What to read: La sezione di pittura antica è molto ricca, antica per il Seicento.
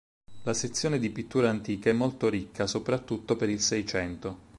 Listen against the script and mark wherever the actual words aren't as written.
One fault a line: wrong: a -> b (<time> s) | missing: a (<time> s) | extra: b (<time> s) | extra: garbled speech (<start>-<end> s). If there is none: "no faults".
wrong: antica -> soprattutto (2.7 s)